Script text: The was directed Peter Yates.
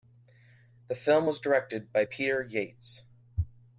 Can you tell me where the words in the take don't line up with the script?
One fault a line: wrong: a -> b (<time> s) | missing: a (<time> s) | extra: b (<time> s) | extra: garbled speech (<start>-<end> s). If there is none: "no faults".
extra: film (0.9 s)
extra: by (1.9 s)